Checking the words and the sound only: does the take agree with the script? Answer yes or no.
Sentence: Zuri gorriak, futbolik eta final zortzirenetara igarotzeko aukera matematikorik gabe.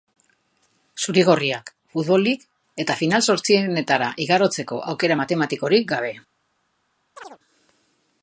no